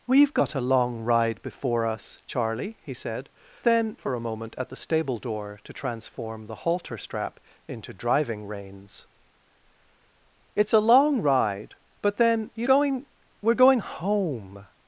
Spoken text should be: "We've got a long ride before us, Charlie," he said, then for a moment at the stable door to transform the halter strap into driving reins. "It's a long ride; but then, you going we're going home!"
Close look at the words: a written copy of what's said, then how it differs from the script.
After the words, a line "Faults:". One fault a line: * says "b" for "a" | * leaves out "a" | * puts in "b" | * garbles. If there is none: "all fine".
"We've got a long ride before us, Charlie," he said, then for a moment at the stable door to transform the halter strap into driving reins. "It's a long ride; but then, you going we're going home!"
Faults:
all fine